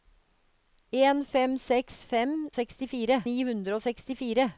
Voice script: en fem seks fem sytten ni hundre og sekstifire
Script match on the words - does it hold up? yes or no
no